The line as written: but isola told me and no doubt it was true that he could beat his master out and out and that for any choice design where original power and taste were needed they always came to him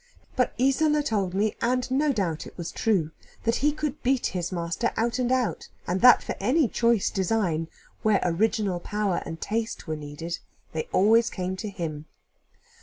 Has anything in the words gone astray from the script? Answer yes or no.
no